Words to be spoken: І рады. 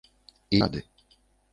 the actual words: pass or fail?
pass